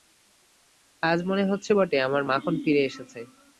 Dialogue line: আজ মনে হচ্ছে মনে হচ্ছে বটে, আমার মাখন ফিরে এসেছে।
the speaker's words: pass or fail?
fail